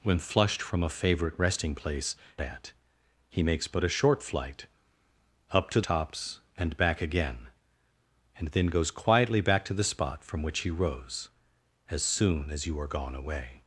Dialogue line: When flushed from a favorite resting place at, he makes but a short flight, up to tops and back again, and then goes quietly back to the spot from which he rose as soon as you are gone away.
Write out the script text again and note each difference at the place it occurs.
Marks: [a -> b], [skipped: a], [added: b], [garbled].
When flushed from a favorite resting place at, he makes but a short flight, up to tops and back again, and then goes quietly back to the spot from which he rose as soon as you are gone away.